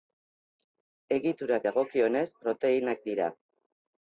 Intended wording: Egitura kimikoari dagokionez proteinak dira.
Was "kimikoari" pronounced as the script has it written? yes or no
no